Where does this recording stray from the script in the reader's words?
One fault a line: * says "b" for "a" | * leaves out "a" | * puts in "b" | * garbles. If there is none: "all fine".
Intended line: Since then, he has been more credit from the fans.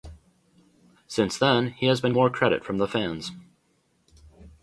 all fine